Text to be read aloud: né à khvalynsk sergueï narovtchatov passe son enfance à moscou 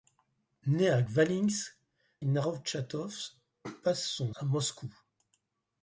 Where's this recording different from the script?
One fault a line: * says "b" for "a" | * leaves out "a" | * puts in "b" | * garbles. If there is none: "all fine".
* leaves out "sergueï"
* leaves out "enfance"